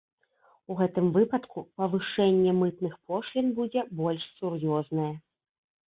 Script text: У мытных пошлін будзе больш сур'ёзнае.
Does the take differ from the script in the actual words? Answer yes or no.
yes